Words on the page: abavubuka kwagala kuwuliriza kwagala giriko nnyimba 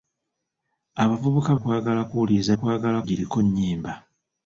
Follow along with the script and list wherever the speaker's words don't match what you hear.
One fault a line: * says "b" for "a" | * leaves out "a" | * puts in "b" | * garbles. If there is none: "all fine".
all fine